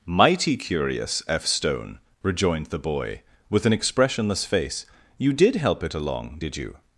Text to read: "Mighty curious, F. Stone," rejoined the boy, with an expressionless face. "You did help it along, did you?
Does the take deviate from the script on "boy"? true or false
false